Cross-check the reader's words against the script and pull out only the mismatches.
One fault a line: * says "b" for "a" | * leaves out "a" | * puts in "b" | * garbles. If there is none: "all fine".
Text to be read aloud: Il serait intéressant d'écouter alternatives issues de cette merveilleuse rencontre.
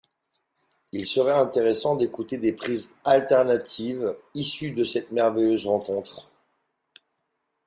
* puts in "des prises"